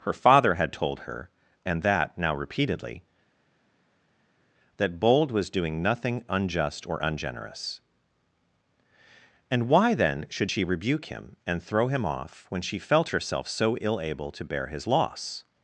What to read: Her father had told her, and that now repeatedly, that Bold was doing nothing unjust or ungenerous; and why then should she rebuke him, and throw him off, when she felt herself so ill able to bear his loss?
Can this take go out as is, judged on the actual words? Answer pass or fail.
pass